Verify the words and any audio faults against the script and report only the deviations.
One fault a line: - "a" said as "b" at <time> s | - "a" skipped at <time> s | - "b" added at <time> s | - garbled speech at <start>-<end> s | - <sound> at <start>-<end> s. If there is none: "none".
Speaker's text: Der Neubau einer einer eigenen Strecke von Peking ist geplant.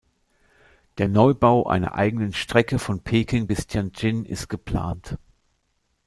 - "einer" skipped at 1.9 s
- "bis Tianjin" added at 3.4 s